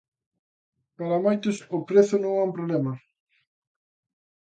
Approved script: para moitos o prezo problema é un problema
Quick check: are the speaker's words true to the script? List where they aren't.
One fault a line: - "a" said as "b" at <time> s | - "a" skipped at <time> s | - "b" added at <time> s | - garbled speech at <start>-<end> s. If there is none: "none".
- "problema" said as "non" at 2.2 s